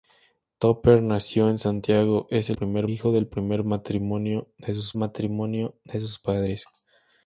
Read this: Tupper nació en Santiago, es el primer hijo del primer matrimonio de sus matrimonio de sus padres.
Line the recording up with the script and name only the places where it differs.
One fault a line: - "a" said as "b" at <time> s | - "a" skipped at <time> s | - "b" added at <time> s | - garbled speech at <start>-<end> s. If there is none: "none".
none